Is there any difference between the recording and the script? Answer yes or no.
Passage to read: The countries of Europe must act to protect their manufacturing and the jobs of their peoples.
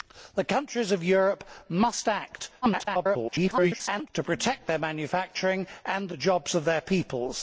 yes